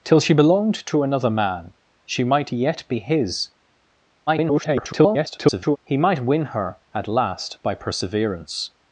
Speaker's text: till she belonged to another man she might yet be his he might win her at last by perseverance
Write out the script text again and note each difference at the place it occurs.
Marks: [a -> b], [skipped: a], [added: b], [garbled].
till she belonged to another man she might yet be his [garbled] he might win her at last by perseverance